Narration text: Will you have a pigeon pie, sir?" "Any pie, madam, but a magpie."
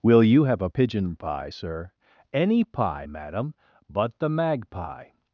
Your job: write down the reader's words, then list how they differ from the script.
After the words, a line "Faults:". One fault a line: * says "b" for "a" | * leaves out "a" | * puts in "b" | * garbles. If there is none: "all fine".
Will you have a pigeon pie, sir?" "Any pie, madam, but the magpie."
Faults:
* says "the" for "a"